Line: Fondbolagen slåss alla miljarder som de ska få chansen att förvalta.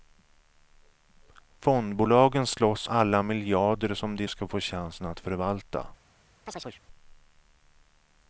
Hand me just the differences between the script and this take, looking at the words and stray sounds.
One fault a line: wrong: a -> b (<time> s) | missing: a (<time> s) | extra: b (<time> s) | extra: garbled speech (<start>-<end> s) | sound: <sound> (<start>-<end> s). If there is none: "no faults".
sound: chirp (6.5-6.8 s)